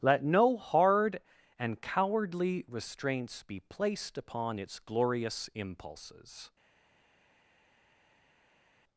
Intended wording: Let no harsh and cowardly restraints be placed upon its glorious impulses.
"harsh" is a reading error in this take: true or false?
true